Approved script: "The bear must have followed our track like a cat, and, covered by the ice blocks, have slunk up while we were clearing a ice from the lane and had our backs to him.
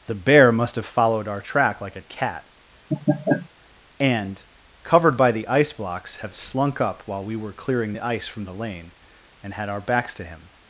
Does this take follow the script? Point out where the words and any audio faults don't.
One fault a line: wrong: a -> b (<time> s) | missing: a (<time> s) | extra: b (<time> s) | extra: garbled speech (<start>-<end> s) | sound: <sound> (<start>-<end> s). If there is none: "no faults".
sound: laugh (2.9-3.5 s)
wrong: a -> the (7.9 s)